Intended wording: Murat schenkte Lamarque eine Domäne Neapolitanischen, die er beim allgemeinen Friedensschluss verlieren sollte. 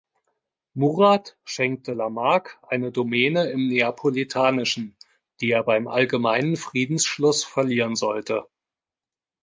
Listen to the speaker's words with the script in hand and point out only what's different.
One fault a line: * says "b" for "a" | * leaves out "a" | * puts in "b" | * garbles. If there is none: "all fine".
* puts in "im"